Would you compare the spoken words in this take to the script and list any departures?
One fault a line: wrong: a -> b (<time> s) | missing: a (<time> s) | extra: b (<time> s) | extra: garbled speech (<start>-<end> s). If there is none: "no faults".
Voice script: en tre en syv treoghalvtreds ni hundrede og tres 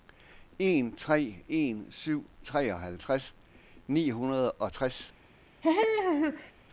no faults